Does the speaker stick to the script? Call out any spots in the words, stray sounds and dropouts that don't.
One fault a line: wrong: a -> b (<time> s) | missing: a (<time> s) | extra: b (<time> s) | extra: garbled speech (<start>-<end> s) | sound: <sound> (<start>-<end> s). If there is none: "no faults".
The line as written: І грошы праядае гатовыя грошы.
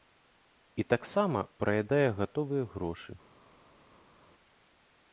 wrong: грошы -> таксама (0.9 s)